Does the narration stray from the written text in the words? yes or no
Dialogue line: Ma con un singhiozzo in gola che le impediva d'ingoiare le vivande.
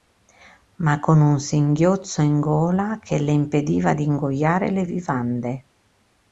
no